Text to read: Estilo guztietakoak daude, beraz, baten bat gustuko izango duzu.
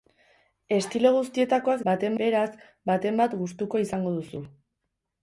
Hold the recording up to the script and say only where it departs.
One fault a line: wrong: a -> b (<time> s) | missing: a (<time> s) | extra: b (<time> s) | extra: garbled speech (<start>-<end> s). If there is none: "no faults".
wrong: daude -> baten (1.9 s)